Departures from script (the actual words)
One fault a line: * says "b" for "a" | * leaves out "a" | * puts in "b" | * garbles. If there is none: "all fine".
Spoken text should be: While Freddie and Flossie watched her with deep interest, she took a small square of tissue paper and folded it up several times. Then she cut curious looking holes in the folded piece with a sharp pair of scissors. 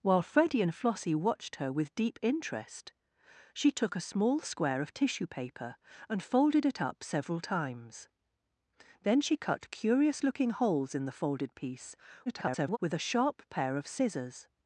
* garbles